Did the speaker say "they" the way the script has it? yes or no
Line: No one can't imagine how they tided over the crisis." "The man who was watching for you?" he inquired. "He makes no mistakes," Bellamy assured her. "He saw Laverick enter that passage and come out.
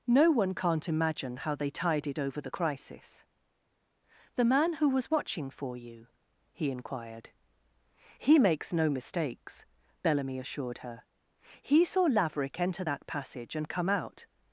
yes